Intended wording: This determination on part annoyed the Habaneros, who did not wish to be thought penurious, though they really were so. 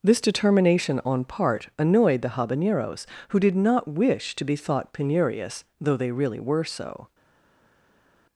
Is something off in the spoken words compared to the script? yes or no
no